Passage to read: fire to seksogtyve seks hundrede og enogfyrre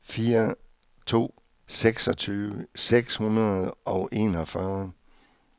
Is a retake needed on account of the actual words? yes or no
no